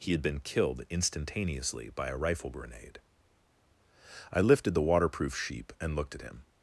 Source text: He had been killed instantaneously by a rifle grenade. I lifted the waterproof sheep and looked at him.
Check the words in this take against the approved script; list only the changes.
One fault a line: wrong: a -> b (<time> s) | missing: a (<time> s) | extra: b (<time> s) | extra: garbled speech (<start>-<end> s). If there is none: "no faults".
no faults